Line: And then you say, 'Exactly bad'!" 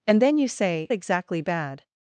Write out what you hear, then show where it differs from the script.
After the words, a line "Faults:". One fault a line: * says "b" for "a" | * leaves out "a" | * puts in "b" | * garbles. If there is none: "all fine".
And then you say, 'Exactly bad'!"
Faults:
all fine